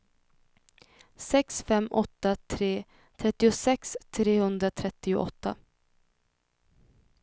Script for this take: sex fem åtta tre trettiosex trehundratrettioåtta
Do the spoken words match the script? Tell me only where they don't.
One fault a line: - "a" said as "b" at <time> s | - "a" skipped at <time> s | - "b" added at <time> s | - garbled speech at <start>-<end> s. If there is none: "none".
none